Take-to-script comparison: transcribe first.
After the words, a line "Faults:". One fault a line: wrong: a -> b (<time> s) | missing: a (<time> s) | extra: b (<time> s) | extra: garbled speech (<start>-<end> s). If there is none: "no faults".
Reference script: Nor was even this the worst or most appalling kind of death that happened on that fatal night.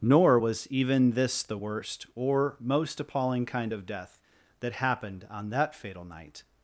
Nor was even this the worst or most appalling kind of death that happened on that fatal night.
Faults:
no faults